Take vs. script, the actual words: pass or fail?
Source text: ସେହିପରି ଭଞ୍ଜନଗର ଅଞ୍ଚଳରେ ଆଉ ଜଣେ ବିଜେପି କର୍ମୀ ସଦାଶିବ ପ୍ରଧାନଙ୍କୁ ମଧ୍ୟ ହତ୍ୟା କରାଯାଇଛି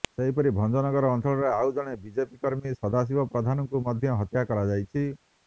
pass